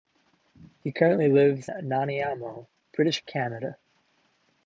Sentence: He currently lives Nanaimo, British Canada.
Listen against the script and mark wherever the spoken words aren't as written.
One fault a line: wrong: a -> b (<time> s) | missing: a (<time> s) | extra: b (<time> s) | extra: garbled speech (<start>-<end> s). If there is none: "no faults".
no faults